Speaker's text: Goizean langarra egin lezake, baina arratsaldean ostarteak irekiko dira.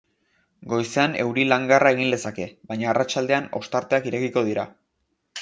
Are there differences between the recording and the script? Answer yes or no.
yes